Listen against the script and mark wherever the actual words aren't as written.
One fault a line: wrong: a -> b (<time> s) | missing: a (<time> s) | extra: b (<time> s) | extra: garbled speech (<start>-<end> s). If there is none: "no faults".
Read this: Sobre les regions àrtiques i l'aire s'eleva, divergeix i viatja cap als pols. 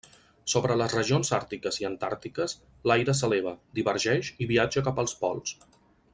extra: antàrtiques (1.9 s)